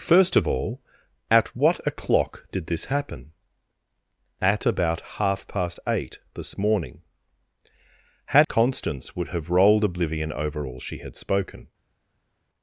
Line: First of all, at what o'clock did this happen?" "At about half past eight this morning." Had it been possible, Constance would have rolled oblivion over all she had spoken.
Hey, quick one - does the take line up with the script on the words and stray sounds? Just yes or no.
no